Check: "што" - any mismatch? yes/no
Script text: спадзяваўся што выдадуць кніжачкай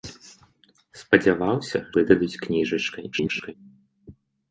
yes